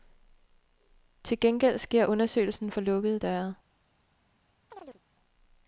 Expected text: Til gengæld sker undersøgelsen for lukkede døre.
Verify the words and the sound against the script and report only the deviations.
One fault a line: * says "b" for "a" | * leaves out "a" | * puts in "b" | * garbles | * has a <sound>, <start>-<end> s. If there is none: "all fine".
* has a chirp, 4.7-5.0 s